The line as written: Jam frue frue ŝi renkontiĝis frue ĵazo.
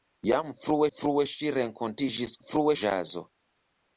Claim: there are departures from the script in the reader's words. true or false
false